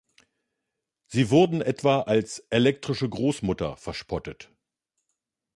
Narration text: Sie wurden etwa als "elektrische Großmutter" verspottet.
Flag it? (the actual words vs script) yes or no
no